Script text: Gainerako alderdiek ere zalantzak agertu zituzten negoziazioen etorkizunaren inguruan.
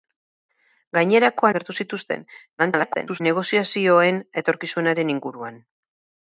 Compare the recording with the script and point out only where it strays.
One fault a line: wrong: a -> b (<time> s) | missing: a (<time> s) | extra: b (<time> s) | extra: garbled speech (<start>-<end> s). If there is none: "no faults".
missing: alderdiek ere zalantzak (1.5 s)
extra: garbled speech (2.6-3.2 s)